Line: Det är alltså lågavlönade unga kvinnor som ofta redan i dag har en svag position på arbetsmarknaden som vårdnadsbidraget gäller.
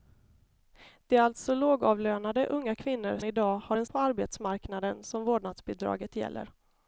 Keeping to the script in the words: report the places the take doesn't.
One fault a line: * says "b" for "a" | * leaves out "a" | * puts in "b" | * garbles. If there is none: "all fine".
* leaves out "som ofta redan"
* leaves out "svag position"